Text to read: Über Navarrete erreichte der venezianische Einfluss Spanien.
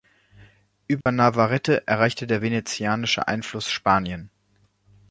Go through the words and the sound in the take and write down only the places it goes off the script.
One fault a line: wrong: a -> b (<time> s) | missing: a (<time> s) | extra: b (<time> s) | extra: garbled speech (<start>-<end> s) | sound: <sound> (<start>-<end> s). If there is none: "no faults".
sound: dropout (1.0-1.1 s)